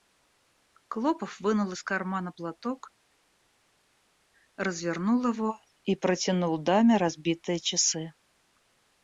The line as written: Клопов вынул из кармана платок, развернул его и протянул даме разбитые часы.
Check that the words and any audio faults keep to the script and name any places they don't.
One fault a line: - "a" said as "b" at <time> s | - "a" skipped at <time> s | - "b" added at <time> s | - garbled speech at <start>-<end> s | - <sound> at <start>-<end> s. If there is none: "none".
none